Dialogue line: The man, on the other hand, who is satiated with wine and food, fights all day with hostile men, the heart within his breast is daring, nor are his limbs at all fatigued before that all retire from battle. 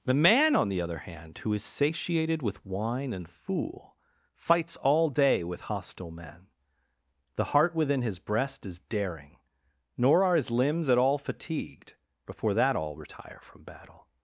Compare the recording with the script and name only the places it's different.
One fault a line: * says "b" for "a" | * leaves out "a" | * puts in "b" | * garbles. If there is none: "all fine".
* says "fool" for "food"